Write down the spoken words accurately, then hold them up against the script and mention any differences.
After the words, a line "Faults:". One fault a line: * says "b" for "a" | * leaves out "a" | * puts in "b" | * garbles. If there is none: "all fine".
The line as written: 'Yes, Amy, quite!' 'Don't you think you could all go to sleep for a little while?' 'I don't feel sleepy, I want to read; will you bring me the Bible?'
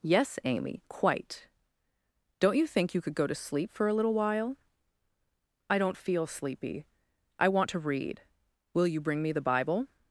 'Yes, Amy, quite!' 'Don't you think you could go to sleep for a little while?' 'I don't feel sleepy, I want to read; will you bring me the Bible?'
Faults:
* leaves out "all"